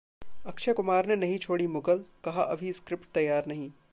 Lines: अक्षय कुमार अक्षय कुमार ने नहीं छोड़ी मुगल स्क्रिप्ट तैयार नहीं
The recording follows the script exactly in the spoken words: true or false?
false